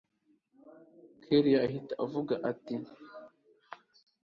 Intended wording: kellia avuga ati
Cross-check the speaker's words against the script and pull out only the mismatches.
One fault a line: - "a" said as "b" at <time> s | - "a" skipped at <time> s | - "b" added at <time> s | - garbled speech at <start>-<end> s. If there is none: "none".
- "ahita" added at 1.7 s